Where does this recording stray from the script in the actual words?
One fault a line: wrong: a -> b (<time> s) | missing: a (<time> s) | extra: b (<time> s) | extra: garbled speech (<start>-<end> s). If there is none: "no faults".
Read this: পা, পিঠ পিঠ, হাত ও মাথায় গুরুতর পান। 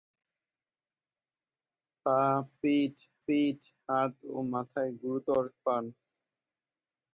no faults